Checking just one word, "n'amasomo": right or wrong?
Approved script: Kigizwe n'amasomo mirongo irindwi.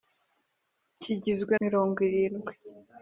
wrong